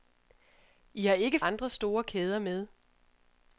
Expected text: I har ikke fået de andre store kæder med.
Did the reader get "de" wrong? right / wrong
wrong